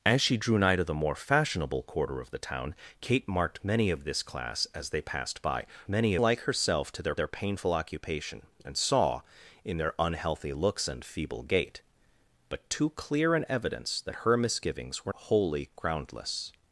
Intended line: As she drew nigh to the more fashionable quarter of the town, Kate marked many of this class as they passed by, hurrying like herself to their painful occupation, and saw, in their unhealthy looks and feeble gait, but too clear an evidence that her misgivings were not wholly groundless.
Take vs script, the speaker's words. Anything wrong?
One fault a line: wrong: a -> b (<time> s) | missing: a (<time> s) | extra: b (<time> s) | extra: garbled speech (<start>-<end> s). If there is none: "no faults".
wrong: hurrying -> many (5.9 s)
extra: their (7.1 s)
missing: not (15.1 s)